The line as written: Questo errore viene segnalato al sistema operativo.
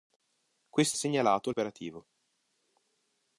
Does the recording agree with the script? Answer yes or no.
no